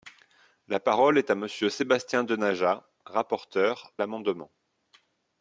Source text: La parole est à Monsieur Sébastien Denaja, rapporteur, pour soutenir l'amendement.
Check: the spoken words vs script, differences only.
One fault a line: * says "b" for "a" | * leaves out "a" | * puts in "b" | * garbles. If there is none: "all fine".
* leaves out "pour soutenir"